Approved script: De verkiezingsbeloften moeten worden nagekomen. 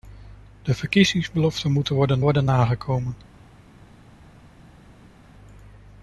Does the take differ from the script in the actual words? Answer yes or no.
yes